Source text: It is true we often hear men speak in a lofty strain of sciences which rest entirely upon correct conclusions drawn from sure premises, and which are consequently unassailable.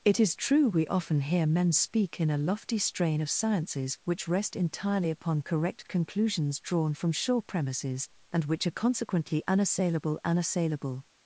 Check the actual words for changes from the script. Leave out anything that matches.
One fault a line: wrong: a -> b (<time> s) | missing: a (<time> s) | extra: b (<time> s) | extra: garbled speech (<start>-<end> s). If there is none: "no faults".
extra: unassailable (10.2 s)